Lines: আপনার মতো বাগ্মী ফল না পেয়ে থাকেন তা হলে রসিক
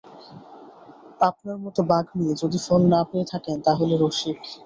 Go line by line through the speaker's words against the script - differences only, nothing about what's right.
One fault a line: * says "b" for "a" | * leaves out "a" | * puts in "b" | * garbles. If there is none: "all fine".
* puts in "যদি"